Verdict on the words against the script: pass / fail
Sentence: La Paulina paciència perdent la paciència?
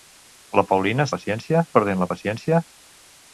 pass